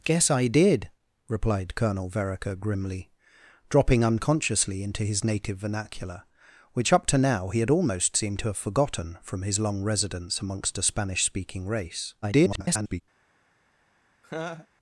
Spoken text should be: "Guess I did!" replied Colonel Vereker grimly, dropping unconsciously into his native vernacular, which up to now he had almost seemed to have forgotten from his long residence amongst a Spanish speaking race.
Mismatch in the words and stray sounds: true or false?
true